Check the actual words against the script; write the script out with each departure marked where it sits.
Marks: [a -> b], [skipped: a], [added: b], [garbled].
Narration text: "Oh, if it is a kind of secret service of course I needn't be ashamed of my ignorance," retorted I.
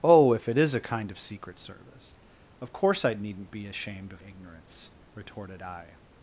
"Oh, if it is a kind of secret service of course I needn't be ashamed of [skipped: my] ignorance," retorted I.